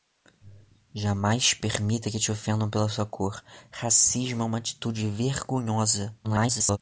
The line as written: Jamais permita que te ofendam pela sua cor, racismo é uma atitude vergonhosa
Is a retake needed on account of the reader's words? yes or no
yes